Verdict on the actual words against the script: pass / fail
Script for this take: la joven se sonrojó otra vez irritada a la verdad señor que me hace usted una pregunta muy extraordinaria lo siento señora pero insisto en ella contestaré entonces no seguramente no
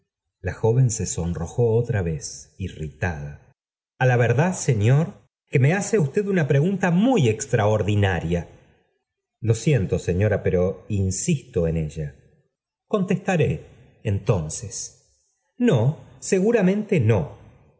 pass